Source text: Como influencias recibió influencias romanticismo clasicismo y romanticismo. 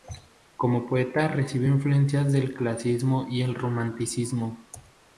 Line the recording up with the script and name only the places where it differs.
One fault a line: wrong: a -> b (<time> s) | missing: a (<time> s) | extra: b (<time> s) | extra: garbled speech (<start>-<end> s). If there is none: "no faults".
wrong: influencias -> poeta (0.9 s)
wrong: romanticismo -> del (2.3 s)
extra: el (3.4 s)